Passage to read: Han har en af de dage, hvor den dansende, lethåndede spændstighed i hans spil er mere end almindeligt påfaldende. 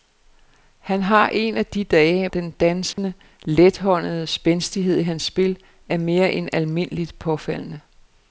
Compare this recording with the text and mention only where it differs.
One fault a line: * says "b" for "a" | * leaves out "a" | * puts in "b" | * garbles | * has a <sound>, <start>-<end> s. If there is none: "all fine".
* leaves out "hvor"
* has a dropout, 2.9-3.0 s